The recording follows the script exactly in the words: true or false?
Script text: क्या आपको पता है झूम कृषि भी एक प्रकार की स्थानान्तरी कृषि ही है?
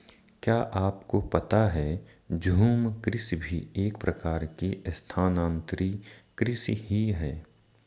true